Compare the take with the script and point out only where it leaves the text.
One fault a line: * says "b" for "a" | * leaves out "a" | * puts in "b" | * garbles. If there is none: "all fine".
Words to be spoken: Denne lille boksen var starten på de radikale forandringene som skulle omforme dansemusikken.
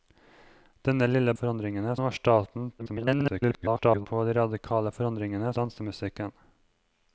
* says "forandringene" for "boksen"
* garbles
* leaves out "som skulle omforme"